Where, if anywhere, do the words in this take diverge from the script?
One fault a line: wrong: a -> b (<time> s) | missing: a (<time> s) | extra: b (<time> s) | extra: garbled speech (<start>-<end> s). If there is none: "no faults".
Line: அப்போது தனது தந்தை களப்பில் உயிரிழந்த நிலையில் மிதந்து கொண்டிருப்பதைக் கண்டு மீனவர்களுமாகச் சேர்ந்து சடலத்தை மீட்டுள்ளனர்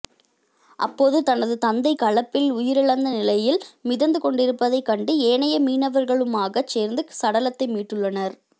extra: ஏனைய (5.3 s)